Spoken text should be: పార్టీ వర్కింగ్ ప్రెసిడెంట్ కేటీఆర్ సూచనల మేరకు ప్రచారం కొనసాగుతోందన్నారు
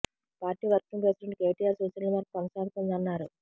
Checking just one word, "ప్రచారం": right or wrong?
wrong